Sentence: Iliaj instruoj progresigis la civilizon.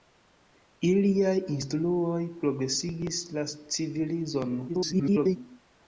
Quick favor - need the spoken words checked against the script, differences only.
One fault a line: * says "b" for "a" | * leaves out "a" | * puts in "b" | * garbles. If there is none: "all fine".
* garbles